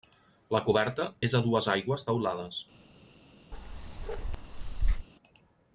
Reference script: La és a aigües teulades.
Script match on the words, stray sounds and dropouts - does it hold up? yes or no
no